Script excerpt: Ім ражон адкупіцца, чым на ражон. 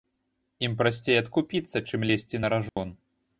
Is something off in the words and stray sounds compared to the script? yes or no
yes